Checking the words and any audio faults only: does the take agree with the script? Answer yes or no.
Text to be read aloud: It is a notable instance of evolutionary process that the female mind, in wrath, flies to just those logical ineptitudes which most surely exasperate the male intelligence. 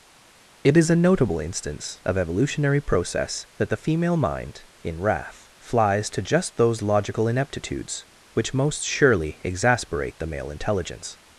yes